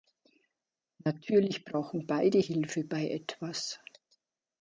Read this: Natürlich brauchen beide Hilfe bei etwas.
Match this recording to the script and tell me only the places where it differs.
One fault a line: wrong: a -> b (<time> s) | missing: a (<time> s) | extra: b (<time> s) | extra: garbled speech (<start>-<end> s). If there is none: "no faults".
no faults